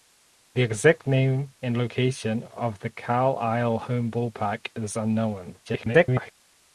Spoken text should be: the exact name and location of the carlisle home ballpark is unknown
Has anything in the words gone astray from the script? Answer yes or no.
yes